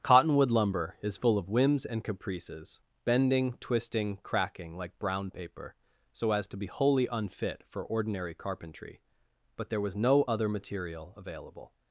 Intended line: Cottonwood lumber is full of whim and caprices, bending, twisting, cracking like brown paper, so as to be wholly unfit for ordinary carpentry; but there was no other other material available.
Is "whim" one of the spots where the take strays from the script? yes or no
yes